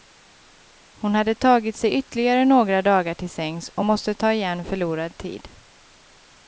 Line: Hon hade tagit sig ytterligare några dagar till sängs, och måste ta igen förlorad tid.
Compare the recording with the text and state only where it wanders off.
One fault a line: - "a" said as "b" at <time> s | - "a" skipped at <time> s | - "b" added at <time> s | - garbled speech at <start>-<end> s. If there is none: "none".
none